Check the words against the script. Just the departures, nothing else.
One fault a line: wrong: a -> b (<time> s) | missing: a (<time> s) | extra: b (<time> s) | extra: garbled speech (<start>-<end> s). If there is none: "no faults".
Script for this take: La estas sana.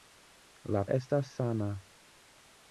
no faults